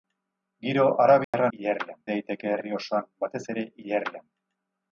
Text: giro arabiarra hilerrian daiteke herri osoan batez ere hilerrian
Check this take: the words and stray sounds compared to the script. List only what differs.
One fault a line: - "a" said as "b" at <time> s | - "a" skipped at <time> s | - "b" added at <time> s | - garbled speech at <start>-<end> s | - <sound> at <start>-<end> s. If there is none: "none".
- dropout at 1.2-1.3 s